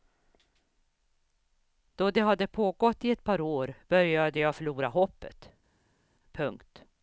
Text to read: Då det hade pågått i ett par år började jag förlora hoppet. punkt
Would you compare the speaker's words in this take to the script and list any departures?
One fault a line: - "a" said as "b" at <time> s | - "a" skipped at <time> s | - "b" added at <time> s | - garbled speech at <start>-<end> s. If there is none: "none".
none